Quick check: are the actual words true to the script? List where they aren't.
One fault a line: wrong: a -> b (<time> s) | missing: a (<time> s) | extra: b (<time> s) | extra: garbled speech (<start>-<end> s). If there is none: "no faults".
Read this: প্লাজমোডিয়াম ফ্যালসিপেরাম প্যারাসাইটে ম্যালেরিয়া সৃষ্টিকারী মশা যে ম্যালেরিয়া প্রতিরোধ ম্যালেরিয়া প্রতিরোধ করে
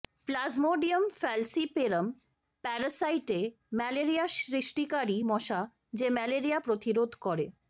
missing: ম্যালেরিয়া প্রতিরোধ (7.1 s)